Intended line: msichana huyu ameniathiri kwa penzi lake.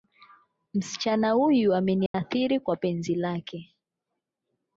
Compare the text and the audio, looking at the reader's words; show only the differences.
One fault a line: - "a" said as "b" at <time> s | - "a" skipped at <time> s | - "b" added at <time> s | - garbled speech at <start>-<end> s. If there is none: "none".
none